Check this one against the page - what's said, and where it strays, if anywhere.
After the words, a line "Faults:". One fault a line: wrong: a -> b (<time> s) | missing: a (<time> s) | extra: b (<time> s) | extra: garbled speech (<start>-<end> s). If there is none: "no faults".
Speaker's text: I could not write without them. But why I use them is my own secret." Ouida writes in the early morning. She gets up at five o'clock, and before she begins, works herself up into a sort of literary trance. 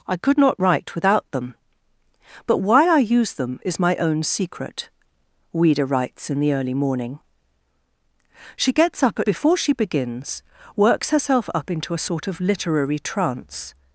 I could not write without them. But why I use them is my own secret." Ouida writes in the early morning. She gets up at before she begins, works herself up into a sort of literary trance.
Faults:
missing: five o'clock and (9.3 s)